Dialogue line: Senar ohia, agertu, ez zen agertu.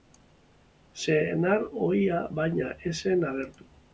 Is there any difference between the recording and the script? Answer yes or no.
yes